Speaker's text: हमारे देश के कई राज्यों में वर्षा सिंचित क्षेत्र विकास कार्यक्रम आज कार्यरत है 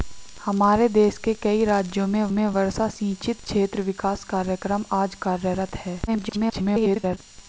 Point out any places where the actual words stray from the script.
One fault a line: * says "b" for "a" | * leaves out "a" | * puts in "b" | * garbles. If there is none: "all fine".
* puts in "में"
* garbles